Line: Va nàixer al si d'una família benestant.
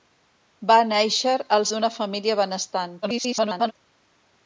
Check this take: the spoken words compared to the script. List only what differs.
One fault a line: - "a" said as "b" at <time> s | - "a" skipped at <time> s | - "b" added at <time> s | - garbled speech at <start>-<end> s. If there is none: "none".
- "si" skipped at 1.7 s
- garbled speech at 3.0-3.7 s